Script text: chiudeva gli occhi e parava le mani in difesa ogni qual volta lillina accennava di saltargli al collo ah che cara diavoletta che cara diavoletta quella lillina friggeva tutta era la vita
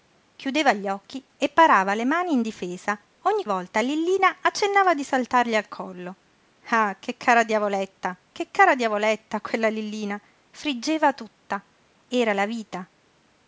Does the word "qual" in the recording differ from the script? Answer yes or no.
yes